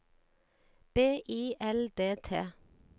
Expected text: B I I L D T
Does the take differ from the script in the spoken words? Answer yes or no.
yes